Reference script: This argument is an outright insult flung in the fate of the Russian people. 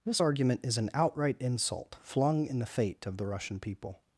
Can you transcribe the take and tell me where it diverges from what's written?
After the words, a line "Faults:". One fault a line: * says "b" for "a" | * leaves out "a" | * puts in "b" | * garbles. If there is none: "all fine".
This argument is an outright insult flung in the fate of the Russian people.
Faults:
all fine